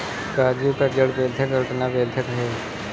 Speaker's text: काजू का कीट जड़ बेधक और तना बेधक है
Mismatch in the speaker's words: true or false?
true